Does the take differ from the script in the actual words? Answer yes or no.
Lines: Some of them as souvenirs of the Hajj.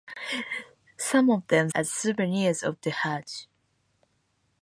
no